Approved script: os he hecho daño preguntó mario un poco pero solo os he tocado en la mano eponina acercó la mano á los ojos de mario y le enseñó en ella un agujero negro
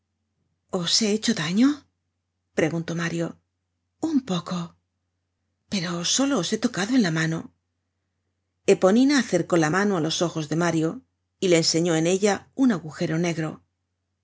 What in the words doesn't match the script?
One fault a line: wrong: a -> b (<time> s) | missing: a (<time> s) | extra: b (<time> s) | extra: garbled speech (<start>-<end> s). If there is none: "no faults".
no faults